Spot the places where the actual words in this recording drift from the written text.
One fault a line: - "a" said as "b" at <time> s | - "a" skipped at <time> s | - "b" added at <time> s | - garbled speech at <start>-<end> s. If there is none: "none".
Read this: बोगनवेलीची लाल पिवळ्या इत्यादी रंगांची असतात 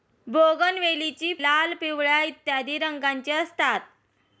none